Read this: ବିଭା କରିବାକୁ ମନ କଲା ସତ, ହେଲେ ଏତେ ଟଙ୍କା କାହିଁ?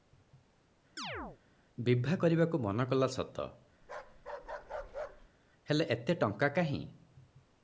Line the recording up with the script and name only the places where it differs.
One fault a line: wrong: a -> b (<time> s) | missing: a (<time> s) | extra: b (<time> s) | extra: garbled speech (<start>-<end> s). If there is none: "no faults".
no faults